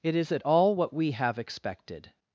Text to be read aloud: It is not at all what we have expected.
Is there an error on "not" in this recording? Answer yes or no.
yes